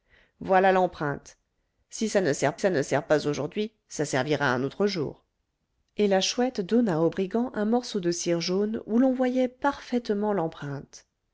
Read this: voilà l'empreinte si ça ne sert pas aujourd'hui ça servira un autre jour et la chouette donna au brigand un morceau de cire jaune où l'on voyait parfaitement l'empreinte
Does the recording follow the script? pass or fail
fail